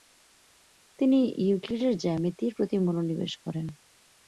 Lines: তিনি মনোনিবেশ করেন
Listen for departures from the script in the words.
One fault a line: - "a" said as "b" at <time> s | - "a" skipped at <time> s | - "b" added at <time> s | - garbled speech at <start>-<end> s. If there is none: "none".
- "ইউক্লিডের জ্যামিতির প্রতি" added at 1.4 s